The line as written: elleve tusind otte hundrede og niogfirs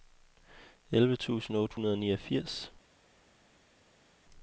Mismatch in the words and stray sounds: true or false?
false